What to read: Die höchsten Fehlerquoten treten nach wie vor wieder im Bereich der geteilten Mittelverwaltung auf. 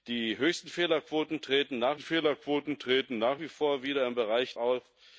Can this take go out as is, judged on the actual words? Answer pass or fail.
fail